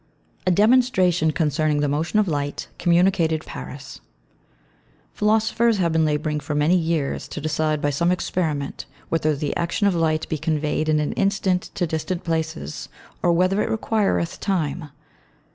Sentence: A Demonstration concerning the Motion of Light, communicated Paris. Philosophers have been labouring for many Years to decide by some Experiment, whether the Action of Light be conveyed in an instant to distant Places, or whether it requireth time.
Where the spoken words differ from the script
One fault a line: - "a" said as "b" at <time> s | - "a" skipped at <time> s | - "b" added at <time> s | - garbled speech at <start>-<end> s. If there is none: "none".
none